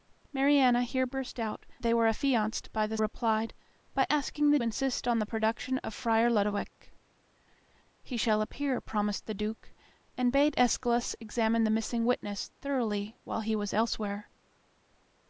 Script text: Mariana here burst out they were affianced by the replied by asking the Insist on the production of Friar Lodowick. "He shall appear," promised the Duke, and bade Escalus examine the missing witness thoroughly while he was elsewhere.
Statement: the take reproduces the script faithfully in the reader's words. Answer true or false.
true